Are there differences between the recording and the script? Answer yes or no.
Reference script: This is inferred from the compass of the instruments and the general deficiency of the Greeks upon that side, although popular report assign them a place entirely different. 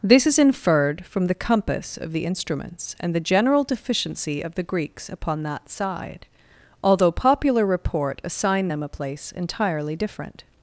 no